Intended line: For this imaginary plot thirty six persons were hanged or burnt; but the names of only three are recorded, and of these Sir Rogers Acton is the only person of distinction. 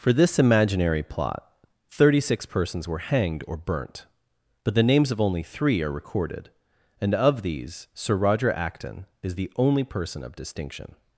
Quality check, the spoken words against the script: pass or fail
fail